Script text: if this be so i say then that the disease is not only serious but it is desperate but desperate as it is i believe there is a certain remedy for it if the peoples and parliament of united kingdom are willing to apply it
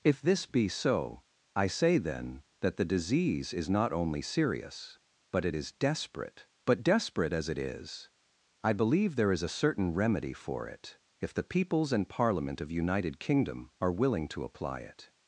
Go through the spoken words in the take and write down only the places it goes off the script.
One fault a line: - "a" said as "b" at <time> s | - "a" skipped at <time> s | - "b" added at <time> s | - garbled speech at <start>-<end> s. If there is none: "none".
none